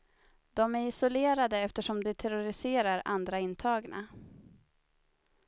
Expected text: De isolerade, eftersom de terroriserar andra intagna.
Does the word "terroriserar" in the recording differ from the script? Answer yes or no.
no